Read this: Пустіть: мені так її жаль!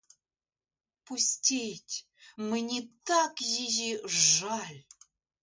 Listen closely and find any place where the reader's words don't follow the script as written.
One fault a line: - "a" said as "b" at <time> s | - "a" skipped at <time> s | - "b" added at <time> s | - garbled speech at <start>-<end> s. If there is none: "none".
none